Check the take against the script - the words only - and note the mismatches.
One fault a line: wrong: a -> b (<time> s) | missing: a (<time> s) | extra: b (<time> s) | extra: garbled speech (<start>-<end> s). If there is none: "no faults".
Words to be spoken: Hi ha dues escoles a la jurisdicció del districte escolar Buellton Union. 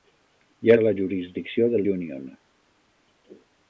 missing: dues escoles (0.8 s)
missing: districte escolar Buellton (1.9 s)